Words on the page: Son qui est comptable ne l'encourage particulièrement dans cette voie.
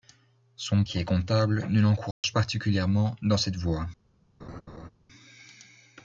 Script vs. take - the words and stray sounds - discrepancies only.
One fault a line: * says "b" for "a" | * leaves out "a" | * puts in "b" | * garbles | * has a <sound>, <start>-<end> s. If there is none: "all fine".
* has a dropout, 2.1-2.2 s
* has a laugh, 4.4-4.9 s